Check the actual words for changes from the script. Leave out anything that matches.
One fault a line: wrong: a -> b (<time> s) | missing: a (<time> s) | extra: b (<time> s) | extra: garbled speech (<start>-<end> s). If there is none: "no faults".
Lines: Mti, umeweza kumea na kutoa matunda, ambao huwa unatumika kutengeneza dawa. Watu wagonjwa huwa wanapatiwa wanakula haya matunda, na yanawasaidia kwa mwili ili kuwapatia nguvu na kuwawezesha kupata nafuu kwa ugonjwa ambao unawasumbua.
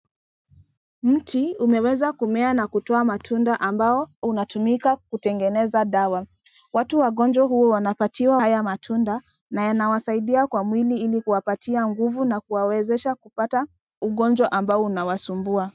missing: huwa (4.1 s)
missing: wanakula (8.4 s)
missing: nafuu kwa (13.7 s)